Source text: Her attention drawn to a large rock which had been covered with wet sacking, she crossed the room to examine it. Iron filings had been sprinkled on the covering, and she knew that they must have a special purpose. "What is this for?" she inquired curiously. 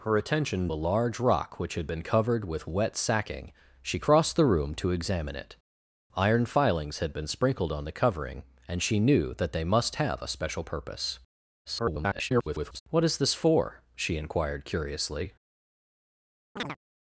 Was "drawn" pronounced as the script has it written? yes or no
no